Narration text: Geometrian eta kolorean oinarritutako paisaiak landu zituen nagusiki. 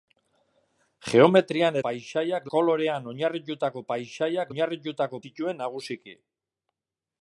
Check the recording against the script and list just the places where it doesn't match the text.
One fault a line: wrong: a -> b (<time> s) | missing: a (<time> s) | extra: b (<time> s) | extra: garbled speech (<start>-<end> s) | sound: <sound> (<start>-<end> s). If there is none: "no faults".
wrong: eta -> paisaiak (1.8 s)
wrong: landu -> oinarritutako (4.5 s)